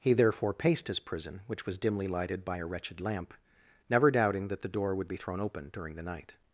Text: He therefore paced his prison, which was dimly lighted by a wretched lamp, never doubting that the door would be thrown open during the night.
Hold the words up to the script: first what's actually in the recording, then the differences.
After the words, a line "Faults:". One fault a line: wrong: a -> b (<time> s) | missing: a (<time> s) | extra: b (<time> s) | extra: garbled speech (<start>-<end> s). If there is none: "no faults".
He therefore paced his prison, which was dimly lighted by a wretched lamp, never doubting that the door would be thrown open during the night.
Faults:
no faults